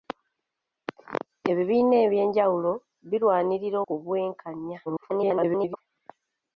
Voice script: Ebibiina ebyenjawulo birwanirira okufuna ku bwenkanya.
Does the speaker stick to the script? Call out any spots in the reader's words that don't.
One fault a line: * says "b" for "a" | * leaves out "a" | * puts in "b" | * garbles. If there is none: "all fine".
* leaves out "okufuna"
* garbles